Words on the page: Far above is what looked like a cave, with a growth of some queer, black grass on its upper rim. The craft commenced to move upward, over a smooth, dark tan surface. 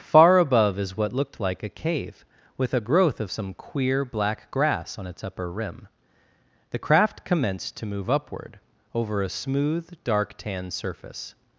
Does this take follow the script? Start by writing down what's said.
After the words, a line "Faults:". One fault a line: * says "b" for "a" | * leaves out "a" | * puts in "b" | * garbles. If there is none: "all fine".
Far above is what looked like a cave, with a growth of some queer, black grass on its upper rim. The craft commenced to move upward, over a smooth, dark tan surface.
Faults:
all fine